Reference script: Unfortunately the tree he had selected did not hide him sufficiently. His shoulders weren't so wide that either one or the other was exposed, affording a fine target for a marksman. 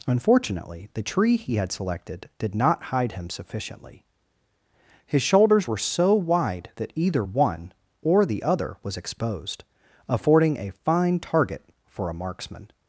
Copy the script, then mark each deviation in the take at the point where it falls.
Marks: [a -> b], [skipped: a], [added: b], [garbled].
Unfortunately the tree he had selected did not hide him sufficiently. His shoulders [weren't -> were] so wide that either one or the other was exposed, affording a fine target for a marksman.